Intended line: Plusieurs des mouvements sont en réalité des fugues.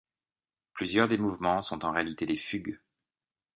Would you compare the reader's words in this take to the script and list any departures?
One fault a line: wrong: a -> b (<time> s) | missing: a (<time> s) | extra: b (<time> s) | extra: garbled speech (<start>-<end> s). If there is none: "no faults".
no faults